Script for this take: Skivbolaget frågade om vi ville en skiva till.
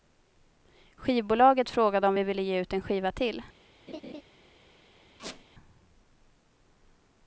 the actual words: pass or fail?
fail